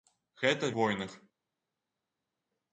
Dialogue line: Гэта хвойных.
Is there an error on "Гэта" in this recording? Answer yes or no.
no